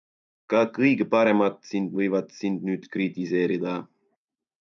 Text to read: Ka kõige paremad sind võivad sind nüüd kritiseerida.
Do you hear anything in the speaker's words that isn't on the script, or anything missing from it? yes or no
no